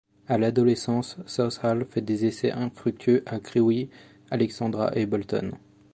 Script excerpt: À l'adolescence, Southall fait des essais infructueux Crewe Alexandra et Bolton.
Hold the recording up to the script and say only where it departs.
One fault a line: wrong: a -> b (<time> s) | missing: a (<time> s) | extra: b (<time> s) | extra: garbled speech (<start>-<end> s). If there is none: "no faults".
extra: à (3.3 s)